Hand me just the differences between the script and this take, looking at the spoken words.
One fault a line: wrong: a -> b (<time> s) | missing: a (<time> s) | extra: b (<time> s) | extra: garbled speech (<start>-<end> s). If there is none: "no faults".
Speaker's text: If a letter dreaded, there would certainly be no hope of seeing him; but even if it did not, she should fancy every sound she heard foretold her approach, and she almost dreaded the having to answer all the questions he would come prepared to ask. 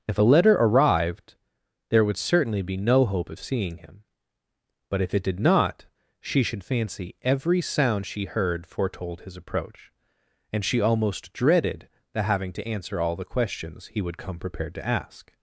wrong: dreaded -> arrived (0.6 s)
missing: even (5.0 s)
wrong: her -> his (9.2 s)